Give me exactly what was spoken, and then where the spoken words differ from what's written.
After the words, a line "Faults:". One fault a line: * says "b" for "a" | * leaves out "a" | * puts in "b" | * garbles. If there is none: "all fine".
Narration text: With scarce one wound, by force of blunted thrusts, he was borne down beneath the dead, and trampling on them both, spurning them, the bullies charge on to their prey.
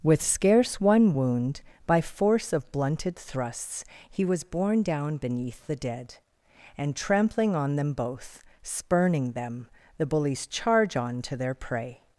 With scarce one wound, by force of blunted thrusts, he was borne down beneath the dead, and trampling on them both, spurning them, the bullies charge on to their prey.
Faults:
all fine